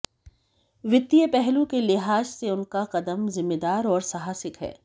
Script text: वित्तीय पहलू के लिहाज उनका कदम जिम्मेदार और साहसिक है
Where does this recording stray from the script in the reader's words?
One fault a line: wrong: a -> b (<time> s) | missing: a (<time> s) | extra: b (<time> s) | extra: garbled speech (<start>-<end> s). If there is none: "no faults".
extra: से (2.2 s)